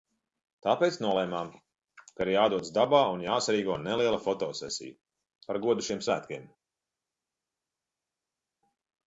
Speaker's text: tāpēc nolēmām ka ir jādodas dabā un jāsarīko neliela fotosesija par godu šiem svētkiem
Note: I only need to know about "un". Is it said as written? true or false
true